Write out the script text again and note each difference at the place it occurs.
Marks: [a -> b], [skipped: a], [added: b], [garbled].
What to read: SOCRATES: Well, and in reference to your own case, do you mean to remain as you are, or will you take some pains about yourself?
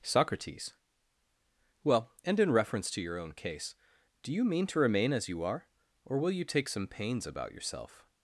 SOCRATES: Well, and in reference to your own case, do you mean to remain as you are, or will you take some pains about yourself?